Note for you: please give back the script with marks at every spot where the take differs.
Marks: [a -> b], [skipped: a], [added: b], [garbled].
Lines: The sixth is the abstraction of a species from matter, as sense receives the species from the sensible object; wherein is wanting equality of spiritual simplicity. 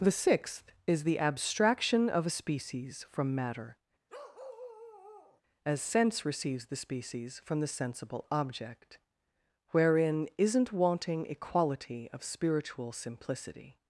The sixth is the abstraction of a species from matter, as sense receives the species from the sensible object; wherein [is -> isn't] wanting equality of spiritual simplicity.